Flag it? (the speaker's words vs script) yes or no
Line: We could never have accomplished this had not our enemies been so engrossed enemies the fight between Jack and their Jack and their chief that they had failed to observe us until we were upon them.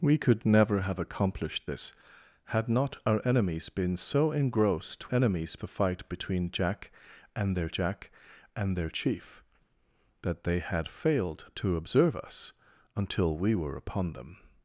no